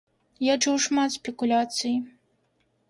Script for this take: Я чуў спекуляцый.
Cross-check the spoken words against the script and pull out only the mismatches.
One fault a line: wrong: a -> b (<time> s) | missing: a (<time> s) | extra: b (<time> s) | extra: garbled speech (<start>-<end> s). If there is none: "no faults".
extra: шмат (0.8 s)